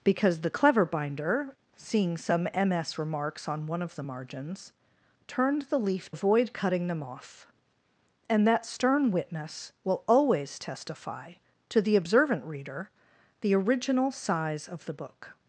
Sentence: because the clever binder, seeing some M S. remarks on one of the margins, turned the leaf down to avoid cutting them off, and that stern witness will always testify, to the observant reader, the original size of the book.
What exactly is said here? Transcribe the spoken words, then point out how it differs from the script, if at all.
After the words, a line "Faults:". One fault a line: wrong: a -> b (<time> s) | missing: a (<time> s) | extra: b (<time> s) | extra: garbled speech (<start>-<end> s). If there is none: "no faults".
because the clever binder, seeing some M S. remarks on one of the margins, turned the leaf avoid cutting them off, and that stern witness will always testify, to the observant reader, the original size of the book.
Faults:
missing: down to (6.1 s)